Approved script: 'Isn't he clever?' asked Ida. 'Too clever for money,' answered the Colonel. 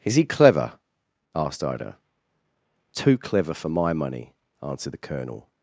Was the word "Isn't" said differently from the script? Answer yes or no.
yes